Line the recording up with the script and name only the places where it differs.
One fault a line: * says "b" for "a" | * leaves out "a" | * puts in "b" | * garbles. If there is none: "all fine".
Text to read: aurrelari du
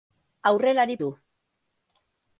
all fine